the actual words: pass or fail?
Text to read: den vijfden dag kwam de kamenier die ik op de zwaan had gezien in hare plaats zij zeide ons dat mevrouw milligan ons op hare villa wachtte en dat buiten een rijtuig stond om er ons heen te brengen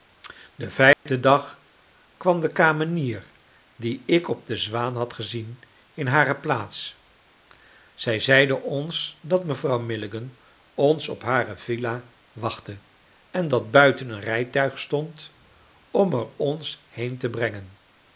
pass